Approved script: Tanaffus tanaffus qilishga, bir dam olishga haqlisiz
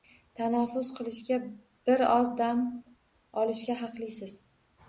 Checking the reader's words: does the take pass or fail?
fail